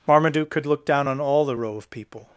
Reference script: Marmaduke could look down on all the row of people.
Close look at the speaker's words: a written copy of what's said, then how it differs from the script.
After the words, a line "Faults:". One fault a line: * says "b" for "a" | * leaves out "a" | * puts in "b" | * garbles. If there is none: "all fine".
Marmaduke could look down on all the row of people.
Faults:
all fine